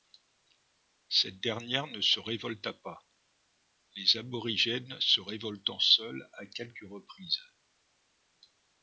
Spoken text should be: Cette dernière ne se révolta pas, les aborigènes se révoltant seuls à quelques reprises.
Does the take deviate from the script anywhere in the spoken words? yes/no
no